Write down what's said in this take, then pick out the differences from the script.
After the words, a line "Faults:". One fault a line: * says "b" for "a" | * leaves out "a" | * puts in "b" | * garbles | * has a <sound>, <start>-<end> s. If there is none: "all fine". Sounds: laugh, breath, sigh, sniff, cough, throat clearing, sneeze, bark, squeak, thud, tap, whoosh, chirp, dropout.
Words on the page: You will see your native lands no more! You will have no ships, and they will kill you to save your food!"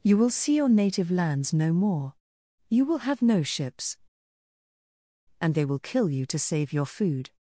You will see your native lands no more! You will have no ships, and they will kill you to save your food!"
Faults:
all fine